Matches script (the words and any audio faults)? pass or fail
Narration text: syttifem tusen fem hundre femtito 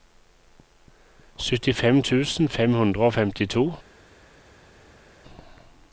fail